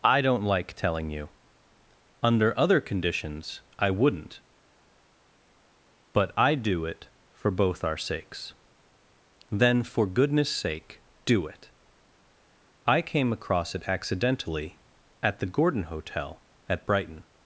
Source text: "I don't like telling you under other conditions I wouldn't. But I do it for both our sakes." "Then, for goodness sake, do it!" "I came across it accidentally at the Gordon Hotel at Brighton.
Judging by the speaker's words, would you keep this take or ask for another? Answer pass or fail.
pass